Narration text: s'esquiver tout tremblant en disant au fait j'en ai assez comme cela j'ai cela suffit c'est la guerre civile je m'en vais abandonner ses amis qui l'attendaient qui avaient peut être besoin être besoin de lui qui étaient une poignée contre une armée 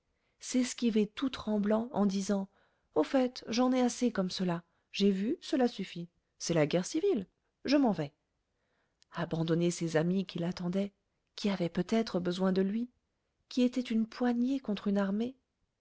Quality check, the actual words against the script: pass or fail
fail